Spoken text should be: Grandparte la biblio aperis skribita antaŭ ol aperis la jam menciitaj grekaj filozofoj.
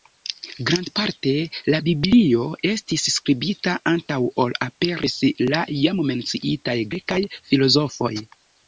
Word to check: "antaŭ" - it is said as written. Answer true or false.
true